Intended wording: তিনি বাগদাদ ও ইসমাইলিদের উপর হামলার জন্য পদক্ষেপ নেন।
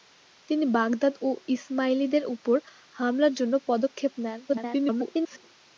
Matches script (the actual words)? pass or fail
fail